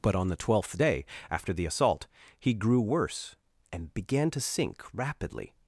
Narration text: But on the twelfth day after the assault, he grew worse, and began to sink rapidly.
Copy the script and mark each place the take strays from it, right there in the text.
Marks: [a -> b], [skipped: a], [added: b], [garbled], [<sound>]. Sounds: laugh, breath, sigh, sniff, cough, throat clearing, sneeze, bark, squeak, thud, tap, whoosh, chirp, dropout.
But on the twelfth day after the assault, he grew worse, and began to sink rapidly.